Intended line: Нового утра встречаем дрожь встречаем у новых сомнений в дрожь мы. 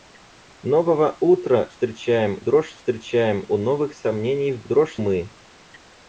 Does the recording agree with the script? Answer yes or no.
yes